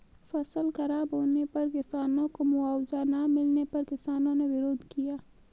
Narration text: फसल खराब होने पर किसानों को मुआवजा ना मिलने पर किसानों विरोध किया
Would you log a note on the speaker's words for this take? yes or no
yes